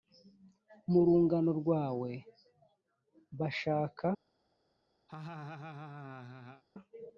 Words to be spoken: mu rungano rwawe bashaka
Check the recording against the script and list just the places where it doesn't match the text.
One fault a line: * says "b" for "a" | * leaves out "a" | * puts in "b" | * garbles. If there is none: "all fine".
all fine